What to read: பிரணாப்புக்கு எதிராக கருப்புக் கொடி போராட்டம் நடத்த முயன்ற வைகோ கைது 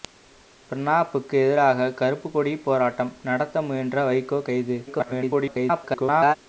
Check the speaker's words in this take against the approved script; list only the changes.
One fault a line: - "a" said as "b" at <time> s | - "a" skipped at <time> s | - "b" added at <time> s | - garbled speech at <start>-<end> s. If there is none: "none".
- garbled speech at 4.9-6.4 s